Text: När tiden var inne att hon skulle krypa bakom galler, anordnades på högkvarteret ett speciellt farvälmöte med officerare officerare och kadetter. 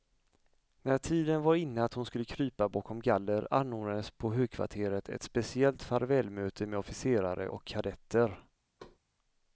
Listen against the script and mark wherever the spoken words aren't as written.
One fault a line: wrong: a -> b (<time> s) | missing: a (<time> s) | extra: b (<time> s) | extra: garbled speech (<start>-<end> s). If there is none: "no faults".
missing: officerare (7.5 s)